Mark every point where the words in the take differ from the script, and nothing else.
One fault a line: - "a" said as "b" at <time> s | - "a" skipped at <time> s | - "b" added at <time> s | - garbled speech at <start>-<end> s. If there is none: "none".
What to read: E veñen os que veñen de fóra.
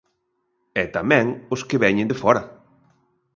- "veñen" said as "tamén" at 1.0 s